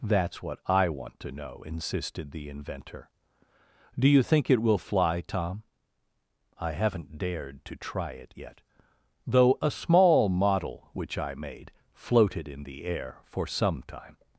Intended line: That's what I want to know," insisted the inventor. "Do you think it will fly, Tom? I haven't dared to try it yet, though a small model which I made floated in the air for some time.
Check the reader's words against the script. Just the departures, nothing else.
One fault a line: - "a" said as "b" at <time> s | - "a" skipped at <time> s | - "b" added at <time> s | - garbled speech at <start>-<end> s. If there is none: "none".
none